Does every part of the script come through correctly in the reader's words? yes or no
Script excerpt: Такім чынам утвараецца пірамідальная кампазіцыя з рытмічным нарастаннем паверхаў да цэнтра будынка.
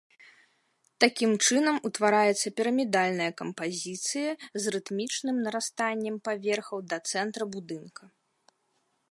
yes